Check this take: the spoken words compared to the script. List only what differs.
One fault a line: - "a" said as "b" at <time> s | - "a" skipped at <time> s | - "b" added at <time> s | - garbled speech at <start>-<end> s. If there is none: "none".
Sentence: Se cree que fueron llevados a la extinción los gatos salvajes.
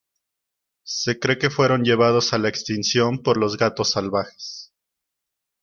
- "por" added at 3.2 s